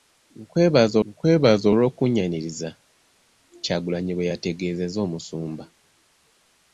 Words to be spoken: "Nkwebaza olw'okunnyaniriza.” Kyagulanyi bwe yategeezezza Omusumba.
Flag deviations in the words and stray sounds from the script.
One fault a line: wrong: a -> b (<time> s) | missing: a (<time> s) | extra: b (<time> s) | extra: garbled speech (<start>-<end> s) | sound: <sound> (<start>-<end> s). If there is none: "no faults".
extra: nkwebaza (1.1 s)